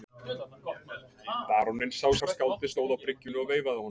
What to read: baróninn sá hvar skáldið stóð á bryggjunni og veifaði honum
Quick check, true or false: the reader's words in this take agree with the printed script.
true